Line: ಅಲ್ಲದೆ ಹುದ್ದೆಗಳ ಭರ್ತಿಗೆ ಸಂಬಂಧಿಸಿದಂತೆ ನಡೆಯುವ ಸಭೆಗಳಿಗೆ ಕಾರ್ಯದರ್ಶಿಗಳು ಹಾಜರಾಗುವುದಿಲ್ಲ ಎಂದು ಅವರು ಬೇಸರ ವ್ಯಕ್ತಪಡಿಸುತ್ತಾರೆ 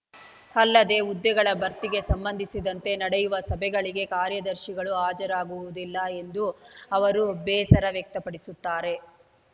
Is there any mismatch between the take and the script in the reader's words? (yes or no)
no